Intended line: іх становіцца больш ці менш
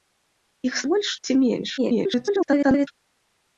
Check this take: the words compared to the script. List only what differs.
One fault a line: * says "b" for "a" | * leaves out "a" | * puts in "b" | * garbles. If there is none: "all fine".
* leaves out "становіцца"
* garbles